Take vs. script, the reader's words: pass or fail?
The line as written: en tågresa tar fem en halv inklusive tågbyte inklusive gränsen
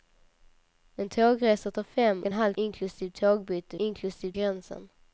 pass